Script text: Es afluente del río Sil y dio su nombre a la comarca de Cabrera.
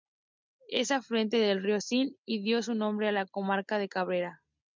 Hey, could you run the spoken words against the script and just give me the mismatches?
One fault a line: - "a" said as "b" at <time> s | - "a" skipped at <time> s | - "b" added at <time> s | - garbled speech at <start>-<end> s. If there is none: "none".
none